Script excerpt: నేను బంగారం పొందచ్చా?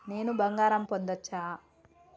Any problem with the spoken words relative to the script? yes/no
no